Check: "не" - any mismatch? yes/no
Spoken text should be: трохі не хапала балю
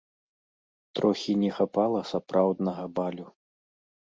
no